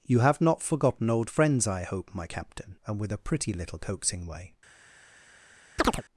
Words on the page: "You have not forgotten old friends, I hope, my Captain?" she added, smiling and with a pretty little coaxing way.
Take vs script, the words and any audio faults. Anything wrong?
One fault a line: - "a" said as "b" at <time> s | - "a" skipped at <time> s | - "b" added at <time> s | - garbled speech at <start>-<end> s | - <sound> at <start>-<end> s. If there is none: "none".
- "she added smiling" skipped at 2.8 s
- chirp at 5.8-6.0 s